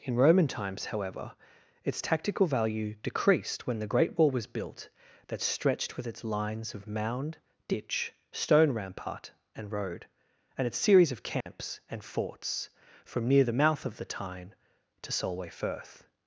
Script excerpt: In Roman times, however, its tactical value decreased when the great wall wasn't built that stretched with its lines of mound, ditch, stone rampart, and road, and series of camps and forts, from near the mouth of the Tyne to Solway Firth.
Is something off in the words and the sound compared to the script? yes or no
yes